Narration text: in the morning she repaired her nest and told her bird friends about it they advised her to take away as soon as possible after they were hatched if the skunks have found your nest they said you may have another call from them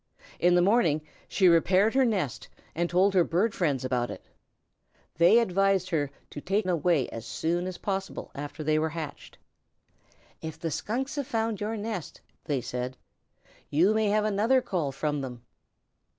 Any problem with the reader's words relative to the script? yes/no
no